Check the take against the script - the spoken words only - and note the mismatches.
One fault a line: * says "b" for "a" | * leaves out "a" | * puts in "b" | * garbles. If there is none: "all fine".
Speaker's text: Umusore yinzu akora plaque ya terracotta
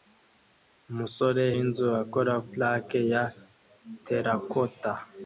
all fine